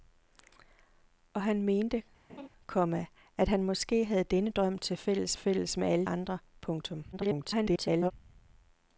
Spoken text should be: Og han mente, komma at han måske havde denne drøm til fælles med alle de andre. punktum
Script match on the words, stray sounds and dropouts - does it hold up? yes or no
no